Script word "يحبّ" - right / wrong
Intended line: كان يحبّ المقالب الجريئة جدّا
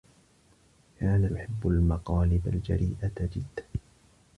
right